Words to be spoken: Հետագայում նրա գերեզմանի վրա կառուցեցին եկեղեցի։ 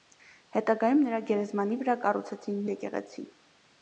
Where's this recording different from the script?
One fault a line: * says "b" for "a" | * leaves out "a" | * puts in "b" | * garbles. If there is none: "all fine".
all fine